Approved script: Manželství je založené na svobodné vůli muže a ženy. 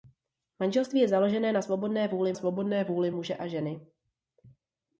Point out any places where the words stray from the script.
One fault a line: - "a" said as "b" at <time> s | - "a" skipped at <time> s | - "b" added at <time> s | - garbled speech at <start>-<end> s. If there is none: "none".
- "svobodné vůli" added at 2.3 s